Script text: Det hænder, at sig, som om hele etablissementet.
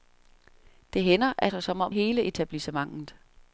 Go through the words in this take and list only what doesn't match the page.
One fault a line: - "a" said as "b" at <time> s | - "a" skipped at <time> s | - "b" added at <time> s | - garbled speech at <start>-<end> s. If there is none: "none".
none